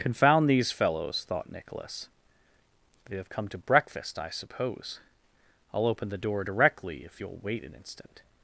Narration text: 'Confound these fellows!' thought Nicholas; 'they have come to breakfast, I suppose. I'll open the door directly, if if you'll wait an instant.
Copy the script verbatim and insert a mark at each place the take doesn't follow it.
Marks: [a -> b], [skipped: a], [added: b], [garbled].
'Confound these fellows!' thought Nicholas; 'they have come to breakfast, I suppose. I'll open the door directly, if [skipped: if] you'll wait an instant.